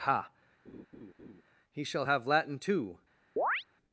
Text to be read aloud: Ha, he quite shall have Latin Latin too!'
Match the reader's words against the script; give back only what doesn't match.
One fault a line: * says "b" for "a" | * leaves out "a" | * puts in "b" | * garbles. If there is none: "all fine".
* leaves out "quite"
* leaves out "Latin"